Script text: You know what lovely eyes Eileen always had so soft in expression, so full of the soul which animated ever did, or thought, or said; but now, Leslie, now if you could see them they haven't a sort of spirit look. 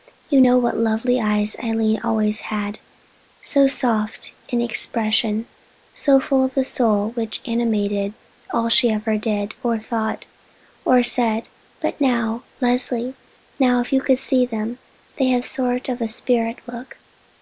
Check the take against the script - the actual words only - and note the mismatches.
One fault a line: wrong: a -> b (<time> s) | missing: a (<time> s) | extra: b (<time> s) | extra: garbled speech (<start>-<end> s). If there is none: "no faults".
extra: all she (8.5 s)
wrong: haven't -> have (15.3 s)